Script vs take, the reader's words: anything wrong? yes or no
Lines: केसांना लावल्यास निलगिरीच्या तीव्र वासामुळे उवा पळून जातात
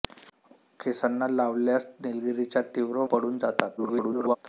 yes